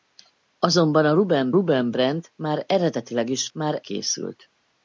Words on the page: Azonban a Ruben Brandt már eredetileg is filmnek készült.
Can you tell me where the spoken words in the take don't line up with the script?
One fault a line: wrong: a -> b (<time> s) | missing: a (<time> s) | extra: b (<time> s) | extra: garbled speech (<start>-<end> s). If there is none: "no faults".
extra: Ruben (1.5 s)
wrong: filmnek -> már (3.5 s)